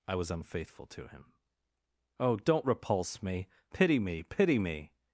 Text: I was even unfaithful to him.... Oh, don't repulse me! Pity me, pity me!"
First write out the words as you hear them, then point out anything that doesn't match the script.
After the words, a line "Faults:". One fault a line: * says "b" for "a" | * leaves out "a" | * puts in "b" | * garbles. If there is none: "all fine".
I was unfaithful to him.... Oh, don't repulse me! Pity me, pity me!"
Faults:
* leaves out "even"